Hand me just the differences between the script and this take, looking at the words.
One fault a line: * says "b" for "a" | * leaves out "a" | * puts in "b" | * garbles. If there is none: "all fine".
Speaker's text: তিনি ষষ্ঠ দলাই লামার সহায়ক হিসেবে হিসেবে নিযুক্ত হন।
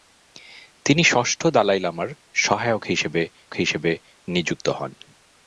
all fine